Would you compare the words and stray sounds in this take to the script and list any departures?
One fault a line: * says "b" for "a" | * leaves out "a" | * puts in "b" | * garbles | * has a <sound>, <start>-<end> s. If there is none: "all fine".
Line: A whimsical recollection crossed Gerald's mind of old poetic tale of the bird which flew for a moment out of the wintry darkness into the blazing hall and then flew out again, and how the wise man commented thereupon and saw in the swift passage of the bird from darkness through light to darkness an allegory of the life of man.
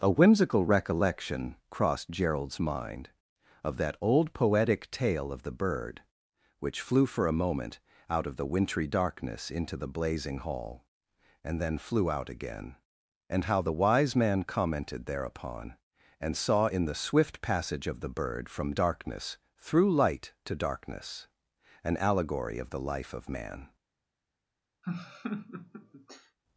* puts in "that"
* has a laugh, 24.8-26.4 s